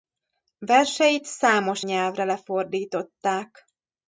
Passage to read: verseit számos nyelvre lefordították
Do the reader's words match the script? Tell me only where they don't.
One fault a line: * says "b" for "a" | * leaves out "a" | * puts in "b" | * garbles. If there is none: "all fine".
all fine